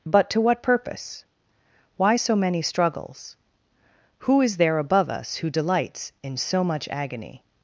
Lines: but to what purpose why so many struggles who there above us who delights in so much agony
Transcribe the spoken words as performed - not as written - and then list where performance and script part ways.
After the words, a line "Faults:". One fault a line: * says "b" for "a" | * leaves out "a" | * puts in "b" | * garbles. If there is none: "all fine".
but to what purpose why so many struggles who is there above us who delights in so much agony
Faults:
* puts in "is"